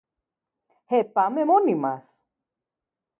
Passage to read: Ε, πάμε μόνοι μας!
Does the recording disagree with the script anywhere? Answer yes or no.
no